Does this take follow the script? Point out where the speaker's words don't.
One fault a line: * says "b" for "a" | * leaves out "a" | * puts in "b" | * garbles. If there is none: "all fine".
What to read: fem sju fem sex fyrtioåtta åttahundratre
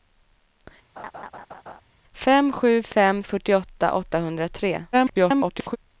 * leaves out "sex"
* garbles